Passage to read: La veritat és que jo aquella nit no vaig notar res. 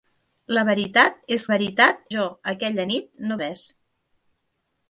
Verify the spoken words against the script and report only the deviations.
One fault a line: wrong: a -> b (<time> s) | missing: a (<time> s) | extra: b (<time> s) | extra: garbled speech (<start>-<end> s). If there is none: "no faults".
wrong: que -> veritat (1.5 s)
missing: vaig notar (3.4 s)